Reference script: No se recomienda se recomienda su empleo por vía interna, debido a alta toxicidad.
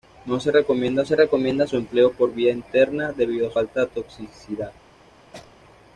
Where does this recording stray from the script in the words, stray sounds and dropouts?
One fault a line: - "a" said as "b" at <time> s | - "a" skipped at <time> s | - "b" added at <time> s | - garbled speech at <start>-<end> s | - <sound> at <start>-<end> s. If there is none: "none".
- sneeze at 5.3-5.5 s